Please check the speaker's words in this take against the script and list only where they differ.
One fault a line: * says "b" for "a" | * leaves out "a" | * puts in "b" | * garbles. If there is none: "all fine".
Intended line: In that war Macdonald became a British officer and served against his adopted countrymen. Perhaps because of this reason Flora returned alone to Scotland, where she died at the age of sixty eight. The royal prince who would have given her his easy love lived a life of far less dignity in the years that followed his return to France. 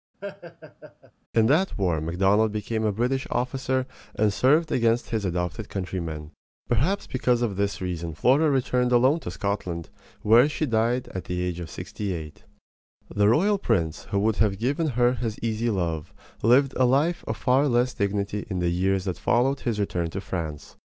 all fine